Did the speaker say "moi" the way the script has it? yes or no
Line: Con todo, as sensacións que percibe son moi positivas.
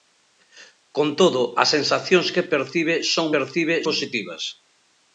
no